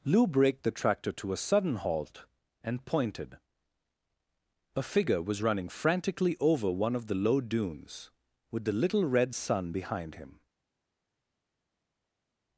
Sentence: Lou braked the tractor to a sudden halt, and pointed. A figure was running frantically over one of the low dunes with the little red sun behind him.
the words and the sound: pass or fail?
pass